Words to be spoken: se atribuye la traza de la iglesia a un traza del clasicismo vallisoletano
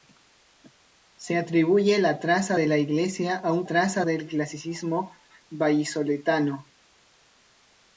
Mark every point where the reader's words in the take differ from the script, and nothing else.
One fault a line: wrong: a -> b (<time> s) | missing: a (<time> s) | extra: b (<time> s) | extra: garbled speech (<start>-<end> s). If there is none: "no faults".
no faults